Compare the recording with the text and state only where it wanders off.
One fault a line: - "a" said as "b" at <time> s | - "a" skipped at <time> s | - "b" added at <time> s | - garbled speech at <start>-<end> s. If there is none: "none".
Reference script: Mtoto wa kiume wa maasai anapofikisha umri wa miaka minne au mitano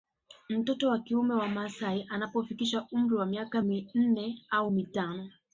none